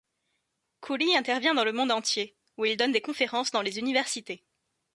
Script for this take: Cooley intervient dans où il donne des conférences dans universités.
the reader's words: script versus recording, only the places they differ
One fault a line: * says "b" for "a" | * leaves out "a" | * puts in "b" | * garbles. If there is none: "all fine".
* puts in "le monde entier"
* puts in "les"